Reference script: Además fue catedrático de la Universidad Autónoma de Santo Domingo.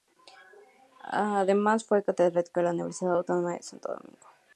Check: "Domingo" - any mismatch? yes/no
no